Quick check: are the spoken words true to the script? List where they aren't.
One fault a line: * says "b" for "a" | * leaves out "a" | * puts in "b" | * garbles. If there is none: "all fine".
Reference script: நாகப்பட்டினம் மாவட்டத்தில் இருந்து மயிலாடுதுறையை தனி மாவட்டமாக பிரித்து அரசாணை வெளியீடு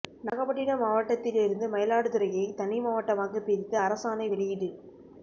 all fine